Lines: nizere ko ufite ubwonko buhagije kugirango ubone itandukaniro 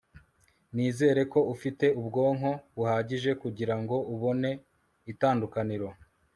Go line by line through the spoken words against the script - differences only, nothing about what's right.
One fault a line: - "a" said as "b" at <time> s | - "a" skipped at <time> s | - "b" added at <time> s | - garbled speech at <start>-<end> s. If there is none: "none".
none